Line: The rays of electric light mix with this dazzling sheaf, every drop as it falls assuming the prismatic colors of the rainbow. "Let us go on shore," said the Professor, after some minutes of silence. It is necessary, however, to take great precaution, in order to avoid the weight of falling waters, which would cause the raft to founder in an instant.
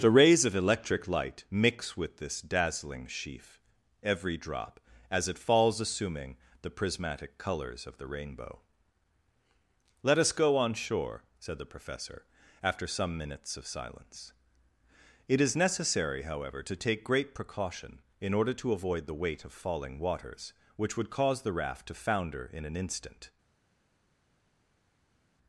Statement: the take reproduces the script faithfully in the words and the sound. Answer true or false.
true